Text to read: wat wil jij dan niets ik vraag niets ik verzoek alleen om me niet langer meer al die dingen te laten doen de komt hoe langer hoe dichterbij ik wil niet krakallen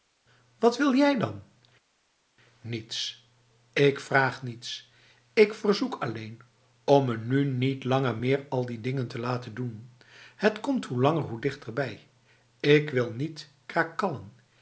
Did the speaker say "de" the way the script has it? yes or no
no